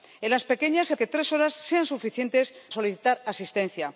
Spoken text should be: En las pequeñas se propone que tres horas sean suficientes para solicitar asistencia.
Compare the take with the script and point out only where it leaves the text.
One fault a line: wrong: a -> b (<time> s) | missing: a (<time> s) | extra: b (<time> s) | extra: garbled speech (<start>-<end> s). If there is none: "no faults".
missing: propone (1.0 s)
missing: para (2.5 s)